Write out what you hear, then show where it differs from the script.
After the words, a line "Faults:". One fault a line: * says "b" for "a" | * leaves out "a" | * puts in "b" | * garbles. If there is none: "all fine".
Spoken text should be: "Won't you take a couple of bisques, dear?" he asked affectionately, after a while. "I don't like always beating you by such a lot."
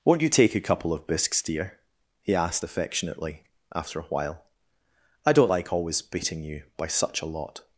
"Won't you take a couple of bisques, dear?" he asked affectionately, after a while. "I don't like always beating you by such a lot."
Faults:
all fine